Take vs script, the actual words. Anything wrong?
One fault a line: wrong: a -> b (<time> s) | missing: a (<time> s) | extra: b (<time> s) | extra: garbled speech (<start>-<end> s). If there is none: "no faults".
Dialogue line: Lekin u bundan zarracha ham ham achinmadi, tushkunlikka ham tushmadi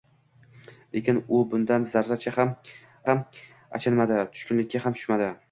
no faults